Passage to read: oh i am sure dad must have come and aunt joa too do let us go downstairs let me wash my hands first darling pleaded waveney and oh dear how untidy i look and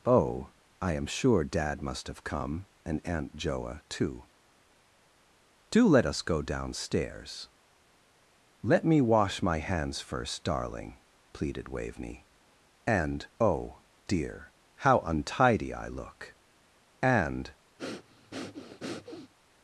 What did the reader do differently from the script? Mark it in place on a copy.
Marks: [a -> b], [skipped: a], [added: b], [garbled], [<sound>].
oh i am sure dad must have come and aunt joa too do let us go downstairs let me wash my hands first darling pleaded waveney and oh dear how untidy i look and [breath]